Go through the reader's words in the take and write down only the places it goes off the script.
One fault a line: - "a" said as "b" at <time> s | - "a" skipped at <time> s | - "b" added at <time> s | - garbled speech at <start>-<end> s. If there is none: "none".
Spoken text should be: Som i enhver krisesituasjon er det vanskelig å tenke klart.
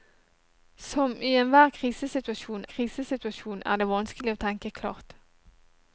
- "krisesituasjon" added at 2.7 s